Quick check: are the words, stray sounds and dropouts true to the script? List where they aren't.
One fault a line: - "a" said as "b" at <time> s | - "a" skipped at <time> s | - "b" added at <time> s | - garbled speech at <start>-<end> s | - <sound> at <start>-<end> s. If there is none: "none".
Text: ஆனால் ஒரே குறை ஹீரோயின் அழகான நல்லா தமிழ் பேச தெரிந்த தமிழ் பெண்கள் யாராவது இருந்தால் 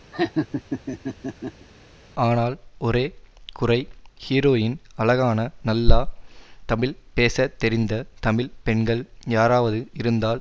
- laugh at 0.1-1.7 s